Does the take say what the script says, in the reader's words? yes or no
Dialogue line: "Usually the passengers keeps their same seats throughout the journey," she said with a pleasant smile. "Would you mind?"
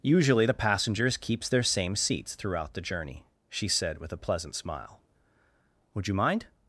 yes